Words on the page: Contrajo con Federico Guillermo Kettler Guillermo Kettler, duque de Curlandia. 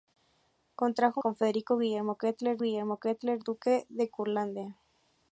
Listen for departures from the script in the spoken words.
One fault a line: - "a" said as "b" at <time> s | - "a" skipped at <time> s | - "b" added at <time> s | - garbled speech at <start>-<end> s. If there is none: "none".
none